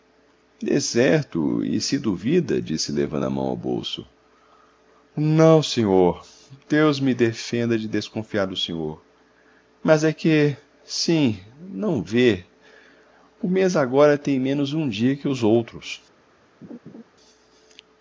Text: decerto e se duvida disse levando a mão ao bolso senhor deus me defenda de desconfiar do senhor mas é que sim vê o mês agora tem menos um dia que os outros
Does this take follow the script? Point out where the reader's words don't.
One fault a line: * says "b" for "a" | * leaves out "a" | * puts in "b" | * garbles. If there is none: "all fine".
* puts in "não"
* puts in "não"